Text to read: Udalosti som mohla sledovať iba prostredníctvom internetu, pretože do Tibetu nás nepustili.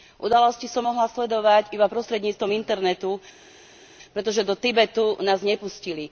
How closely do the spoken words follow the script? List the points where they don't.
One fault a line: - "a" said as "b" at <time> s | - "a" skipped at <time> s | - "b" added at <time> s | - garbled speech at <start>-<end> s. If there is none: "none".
none